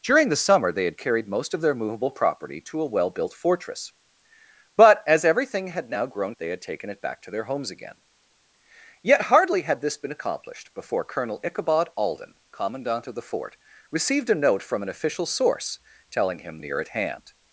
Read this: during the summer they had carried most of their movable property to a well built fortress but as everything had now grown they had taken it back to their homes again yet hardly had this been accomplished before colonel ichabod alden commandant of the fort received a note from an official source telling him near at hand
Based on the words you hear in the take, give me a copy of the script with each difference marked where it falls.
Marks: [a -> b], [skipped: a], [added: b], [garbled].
during the summer they had carried most of their movable property to a well built fortress but as everything had now grown they had taken it back to their homes again yet hardly had this been accomplished before colonel ichabod alden commandant of the fort received a note from an official source telling him near at hand